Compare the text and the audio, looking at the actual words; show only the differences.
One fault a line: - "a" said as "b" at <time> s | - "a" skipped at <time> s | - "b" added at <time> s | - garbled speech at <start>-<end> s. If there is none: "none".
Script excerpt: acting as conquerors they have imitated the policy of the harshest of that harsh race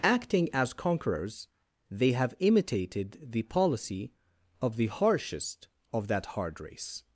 - "harsh" said as "hard" at 6.3 s